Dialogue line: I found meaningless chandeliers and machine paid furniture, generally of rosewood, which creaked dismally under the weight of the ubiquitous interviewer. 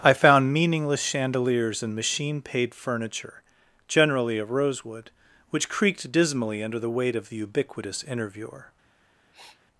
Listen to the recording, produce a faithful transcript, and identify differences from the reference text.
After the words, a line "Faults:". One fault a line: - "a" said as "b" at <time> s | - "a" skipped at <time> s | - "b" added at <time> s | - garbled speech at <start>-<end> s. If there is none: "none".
I found meaningless chandeliers and machine paid furniture, generally of rosewood, which creaked dismally under the weight of the ubiquitous interviewer.
Faults:
none